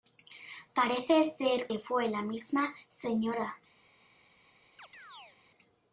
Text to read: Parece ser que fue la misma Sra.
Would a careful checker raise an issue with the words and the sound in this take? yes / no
yes